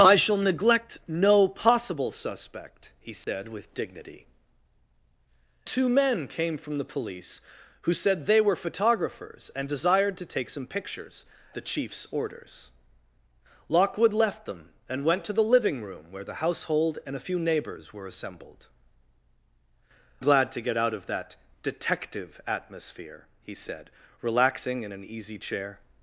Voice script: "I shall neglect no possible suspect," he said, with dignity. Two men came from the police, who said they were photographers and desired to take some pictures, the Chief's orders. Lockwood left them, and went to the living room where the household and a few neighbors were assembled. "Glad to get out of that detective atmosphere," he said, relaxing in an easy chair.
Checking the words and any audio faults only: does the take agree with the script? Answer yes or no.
no